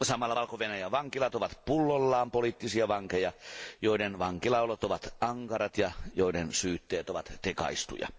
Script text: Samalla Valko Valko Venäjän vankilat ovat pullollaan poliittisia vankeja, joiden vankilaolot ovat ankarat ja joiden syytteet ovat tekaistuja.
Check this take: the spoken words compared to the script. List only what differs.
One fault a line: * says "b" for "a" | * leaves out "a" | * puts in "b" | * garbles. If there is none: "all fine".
* leaves out "Valko"